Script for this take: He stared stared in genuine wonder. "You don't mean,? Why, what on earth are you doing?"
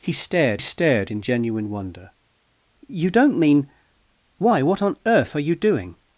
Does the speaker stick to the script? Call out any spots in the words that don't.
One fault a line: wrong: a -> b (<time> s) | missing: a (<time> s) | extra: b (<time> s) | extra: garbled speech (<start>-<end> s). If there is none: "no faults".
no faults